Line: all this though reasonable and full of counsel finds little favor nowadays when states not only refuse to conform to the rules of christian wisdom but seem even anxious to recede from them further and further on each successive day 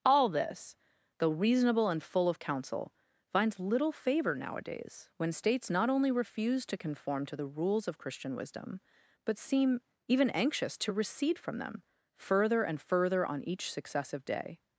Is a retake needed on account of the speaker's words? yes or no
no